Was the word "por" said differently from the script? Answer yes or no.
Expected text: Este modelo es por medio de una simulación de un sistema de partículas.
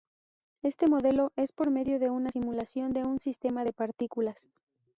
no